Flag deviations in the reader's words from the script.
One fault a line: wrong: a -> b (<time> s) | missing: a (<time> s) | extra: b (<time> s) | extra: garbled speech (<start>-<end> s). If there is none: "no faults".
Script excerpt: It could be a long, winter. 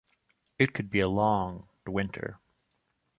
no faults